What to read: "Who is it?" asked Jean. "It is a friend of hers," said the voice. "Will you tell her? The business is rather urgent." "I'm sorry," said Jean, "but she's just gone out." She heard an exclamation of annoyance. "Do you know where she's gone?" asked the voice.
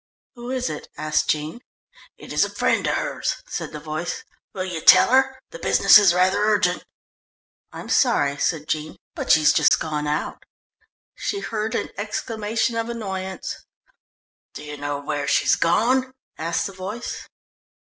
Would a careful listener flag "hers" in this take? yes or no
no